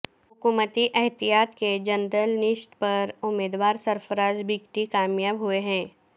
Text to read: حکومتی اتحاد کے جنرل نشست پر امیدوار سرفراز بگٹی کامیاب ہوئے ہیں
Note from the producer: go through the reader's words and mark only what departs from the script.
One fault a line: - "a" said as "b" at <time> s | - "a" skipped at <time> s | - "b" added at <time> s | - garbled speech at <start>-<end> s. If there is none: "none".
none